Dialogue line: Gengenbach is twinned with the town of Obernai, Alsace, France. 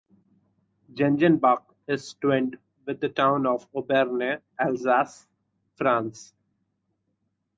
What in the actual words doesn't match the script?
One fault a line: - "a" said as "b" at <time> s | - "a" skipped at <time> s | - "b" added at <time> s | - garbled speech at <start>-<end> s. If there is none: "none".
none